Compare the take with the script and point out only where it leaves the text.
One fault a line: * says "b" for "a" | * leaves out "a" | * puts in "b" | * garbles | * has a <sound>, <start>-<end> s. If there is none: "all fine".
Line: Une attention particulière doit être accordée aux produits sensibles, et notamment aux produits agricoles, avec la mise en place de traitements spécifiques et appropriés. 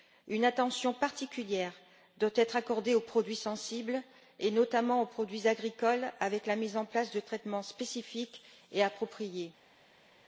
all fine